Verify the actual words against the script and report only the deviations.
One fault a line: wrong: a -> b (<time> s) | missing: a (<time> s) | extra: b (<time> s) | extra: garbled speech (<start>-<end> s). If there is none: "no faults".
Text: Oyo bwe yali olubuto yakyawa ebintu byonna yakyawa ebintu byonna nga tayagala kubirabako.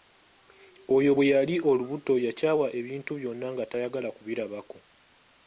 missing: yakyawa ebintu byonna (3.5 s)